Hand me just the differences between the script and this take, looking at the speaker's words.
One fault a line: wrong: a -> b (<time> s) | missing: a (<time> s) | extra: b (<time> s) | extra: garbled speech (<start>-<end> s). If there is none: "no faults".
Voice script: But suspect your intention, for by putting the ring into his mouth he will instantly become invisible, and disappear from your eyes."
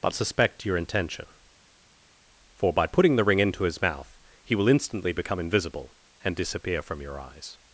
no faults